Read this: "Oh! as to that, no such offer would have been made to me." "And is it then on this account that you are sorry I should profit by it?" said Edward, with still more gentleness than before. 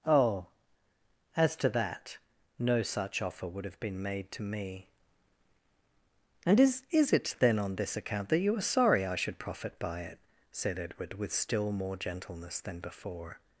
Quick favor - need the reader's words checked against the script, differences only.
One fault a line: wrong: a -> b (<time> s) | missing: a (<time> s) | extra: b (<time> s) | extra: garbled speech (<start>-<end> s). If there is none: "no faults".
extra: is (6.9 s)